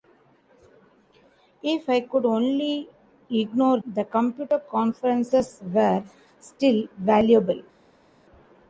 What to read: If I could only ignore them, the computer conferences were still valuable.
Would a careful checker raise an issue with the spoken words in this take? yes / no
yes